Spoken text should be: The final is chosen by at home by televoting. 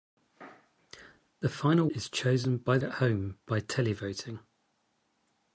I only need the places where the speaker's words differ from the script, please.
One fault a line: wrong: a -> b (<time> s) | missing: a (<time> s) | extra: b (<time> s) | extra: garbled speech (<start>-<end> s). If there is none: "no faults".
no faults